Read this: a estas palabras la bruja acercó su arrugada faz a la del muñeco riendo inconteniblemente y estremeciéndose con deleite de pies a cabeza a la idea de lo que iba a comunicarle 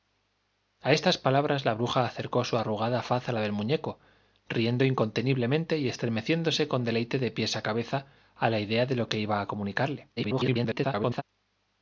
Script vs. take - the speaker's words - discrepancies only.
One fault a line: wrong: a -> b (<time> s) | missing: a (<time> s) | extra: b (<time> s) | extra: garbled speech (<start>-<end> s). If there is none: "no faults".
extra: garbled speech (10.2-11.2 s)